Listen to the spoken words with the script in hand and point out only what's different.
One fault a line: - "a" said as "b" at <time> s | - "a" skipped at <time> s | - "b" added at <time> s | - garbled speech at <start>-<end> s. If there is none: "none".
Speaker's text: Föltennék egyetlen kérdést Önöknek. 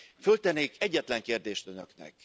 none